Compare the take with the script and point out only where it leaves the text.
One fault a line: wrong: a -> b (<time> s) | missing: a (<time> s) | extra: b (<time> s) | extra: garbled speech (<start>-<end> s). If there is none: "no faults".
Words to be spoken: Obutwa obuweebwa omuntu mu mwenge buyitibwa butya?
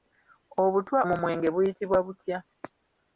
missing: obuweebwa omuntu (1.0 s)